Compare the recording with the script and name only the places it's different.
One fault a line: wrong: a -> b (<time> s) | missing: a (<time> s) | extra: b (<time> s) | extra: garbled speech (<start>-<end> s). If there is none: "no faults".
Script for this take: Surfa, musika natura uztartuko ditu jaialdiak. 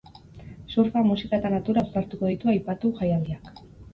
extra: eta (1.4 s)
extra: aipatu (2.6 s)